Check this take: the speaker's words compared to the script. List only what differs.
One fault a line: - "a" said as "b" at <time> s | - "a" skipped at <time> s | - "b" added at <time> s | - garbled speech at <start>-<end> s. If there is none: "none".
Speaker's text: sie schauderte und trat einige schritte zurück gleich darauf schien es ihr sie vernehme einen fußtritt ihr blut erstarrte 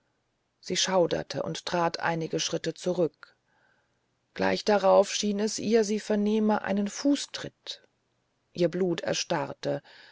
none